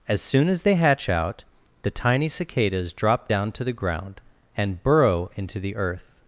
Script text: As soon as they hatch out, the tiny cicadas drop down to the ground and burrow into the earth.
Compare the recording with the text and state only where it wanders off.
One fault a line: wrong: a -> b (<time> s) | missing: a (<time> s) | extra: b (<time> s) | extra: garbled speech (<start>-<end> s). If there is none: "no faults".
no faults